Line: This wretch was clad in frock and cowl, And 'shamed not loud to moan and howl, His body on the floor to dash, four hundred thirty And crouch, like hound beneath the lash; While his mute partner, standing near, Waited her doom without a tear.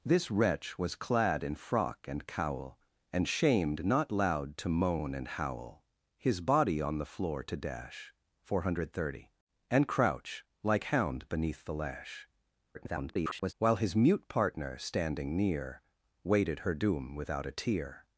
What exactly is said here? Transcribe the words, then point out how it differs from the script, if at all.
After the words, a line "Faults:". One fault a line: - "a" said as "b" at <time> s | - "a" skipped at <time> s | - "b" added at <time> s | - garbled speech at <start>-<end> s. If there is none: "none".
This wretch was clad in frock and cowl, And 'shamed not loud to moan and howl, His body on the floor to dash, four hundred thirty And crouch, like hound beneath the lash; [garbled] While his mute partner, standing near, Waited her doom without a tear.
Faults:
- garbled speech at 12.7-13.5 s